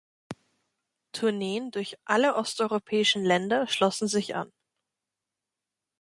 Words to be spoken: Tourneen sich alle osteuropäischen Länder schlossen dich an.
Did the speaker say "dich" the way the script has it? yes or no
no